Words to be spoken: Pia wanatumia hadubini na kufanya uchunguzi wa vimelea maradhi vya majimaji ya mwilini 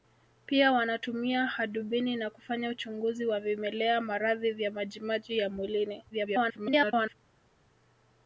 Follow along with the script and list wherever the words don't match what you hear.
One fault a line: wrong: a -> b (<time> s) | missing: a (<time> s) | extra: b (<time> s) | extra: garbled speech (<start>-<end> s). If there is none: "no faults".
extra: garbled speech (6.1-7.2 s)